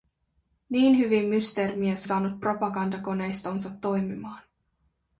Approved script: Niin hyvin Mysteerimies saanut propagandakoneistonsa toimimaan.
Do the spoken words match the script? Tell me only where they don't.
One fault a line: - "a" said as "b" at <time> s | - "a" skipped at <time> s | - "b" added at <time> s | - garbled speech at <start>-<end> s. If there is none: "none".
none